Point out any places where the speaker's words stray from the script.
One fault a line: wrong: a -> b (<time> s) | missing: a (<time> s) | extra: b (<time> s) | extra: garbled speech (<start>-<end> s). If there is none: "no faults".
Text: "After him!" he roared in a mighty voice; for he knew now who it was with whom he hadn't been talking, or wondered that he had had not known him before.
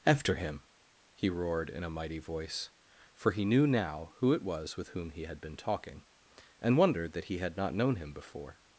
wrong: hadn't -> had (5.2 s)
wrong: or -> and (6.6 s)
missing: had (7.6 s)